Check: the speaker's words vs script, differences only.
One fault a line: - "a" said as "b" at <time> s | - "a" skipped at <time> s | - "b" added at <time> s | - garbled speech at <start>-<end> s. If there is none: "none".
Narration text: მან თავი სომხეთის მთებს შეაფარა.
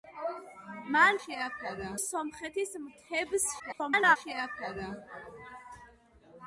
- "თავი" said as "შეაფარა" at 1.2 s
- garbled speech at 3.6-4.2 s